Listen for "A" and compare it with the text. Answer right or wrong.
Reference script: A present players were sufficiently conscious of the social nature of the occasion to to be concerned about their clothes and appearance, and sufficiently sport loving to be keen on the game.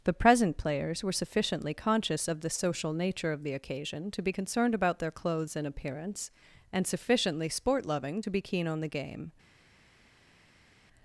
wrong